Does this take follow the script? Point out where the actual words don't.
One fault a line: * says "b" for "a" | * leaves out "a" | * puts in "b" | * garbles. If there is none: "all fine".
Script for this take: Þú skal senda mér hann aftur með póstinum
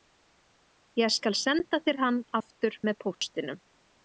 * says "Ég" for "Þú"
* says "þér" for "mér"